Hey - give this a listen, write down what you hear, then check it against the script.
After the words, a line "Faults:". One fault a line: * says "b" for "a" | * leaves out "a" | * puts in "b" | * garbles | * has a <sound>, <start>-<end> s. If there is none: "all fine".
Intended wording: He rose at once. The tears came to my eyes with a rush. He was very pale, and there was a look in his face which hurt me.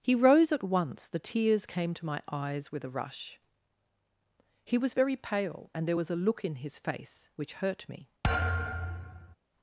He rose at once. The tears came to my eyes with a rush. He was very pale, and there was a look in his face which hurt me.
Faults:
* has a thud, 8.2-9.4 s